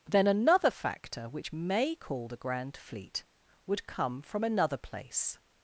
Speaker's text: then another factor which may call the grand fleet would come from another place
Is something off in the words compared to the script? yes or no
no